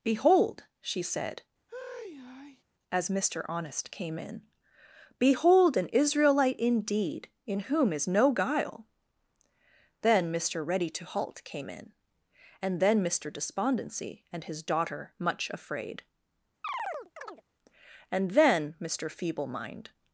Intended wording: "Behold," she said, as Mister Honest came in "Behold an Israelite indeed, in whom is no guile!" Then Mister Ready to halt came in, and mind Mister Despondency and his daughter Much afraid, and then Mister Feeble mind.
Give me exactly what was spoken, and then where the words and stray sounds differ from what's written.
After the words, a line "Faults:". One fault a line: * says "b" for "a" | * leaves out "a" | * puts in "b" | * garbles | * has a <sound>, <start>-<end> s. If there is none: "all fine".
"Behold," she said, as Mister Honest came in "Behold an Israelite indeed, in whom is no guile!" Then Mister Ready to halt came in, and then Mister Despondency and his daughter Much afraid, and then Mister Feeble mind.
Faults:
* has a sigh, 1.7-2.6 s
* says "then" for "mind"
* has a chirp, 16.6-17.4 s